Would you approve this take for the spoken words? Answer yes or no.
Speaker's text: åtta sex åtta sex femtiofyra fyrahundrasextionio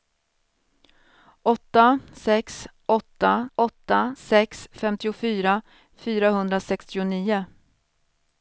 no